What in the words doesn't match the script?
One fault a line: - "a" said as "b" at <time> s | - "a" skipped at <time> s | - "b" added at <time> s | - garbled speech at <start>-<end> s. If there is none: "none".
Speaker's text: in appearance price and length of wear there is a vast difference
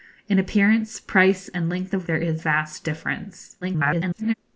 - "wear" skipped at 2.1 s
- "a" skipped at 2.4 s
- garbled speech at 3.6-4.3 s